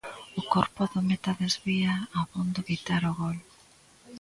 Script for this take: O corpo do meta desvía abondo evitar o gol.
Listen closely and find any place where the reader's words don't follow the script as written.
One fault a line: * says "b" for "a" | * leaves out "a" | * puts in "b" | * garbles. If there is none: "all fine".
all fine